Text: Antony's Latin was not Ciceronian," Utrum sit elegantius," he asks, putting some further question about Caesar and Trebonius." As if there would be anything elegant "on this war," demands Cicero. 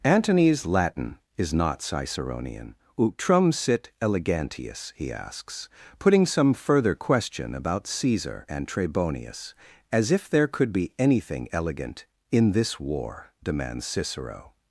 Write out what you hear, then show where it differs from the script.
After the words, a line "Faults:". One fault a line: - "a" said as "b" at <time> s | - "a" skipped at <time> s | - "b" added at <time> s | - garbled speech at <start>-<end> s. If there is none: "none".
Antony's Latin is not Ciceronian," Utrum sit elegantius," he asks, putting some further question about Caesar and Trebonius." As if there could be anything elegant "in this war," demands Cicero.
Faults:
- "was" said as "is" at 1.4 s
- "would" said as "could" at 10.5 s
- "on" said as "in" at 12.3 s